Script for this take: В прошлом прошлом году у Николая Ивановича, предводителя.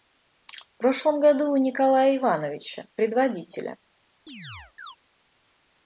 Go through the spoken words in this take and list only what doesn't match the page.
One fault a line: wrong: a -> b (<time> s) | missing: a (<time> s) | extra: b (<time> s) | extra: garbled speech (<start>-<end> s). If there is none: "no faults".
missing: прошлом (1.2 s)